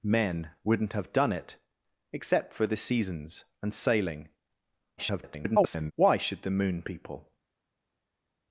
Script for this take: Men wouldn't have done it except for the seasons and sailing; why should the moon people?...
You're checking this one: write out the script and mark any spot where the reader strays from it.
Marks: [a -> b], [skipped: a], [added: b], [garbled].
Men wouldn't have done it except for the seasons and sailing; [garbled] why should the moon people?...